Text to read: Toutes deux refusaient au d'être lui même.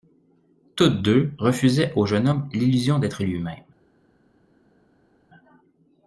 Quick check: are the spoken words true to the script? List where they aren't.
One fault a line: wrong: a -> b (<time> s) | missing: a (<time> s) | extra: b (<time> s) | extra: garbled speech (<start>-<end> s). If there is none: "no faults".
extra: jeune homme l'illusion (2.1 s)